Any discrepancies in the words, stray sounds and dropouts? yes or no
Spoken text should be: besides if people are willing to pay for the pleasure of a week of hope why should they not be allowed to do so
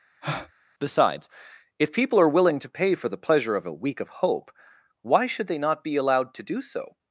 yes